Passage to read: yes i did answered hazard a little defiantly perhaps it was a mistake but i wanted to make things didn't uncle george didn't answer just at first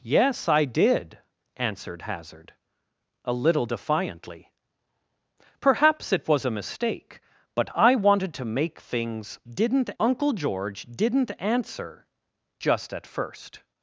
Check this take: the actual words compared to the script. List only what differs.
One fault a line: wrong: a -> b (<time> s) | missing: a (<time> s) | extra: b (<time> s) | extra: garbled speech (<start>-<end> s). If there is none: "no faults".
no faults